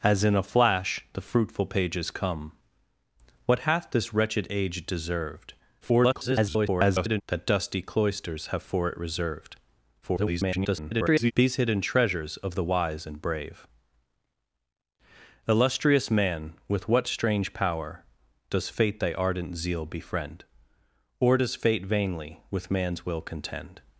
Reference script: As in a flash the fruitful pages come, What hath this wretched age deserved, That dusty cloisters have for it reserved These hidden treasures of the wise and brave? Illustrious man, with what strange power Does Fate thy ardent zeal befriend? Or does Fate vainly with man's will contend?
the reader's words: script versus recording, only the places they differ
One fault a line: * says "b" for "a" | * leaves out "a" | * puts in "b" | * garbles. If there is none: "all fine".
* garbles
* garbles